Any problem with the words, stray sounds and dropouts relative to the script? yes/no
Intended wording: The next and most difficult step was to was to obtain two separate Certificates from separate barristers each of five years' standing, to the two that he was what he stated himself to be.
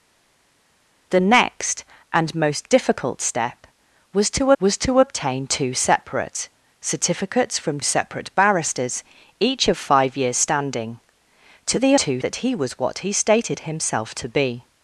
no